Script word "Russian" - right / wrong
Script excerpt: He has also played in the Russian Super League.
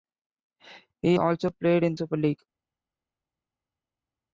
wrong